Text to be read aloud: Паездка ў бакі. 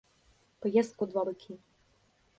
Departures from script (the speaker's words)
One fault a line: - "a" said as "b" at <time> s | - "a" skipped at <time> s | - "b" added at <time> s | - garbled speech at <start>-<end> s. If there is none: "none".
- "два" added at 1.1 s